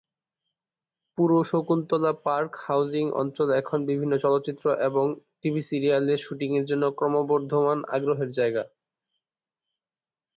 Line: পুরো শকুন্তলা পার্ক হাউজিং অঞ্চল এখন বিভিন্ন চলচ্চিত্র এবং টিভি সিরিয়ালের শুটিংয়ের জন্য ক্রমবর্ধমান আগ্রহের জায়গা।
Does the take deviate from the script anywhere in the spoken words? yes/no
no